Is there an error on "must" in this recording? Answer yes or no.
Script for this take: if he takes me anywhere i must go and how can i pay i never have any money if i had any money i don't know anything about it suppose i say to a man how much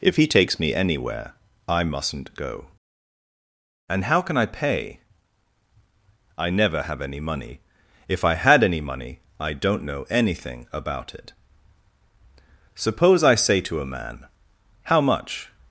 yes